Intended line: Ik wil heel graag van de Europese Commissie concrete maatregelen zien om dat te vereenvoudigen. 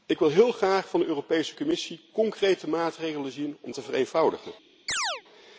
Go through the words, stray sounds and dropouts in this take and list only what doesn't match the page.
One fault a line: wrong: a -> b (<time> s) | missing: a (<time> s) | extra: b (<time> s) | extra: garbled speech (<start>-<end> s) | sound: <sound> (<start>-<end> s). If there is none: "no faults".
missing: dat (3.7 s)
sound: chirp (4.9-5.2 s)